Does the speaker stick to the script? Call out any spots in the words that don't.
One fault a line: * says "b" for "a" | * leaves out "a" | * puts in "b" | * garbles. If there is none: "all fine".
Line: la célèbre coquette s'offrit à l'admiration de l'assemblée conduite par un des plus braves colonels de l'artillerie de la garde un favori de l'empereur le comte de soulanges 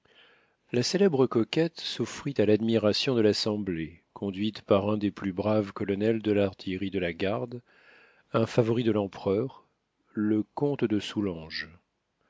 all fine